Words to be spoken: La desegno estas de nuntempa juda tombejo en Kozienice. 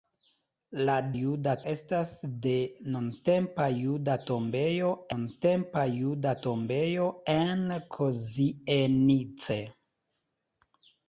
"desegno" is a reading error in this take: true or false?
true